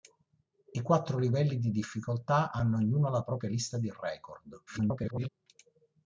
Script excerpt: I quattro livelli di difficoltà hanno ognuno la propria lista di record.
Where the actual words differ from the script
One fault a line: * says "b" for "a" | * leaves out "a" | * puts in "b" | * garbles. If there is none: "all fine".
* garbles